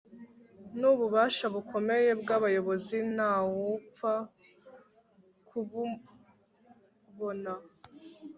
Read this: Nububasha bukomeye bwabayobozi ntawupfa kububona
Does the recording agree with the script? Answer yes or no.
yes